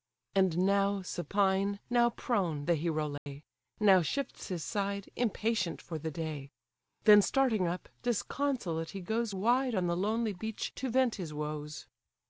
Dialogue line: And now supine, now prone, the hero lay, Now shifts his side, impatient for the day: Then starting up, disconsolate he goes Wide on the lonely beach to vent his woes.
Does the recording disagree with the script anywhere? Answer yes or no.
no